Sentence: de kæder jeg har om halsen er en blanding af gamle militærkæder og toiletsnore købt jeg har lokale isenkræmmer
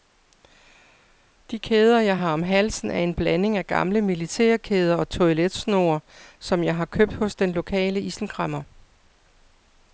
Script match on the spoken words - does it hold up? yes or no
no